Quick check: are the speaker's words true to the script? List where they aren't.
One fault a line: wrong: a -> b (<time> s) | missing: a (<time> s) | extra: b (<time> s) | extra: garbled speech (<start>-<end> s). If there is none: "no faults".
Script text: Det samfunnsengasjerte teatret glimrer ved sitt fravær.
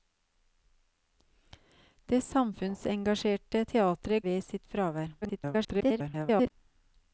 missing: glimrer (4.2 s)
extra: garbled speech (5.2-6.5 s)